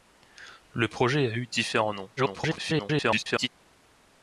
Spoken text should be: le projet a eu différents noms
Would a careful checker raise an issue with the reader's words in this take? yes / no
yes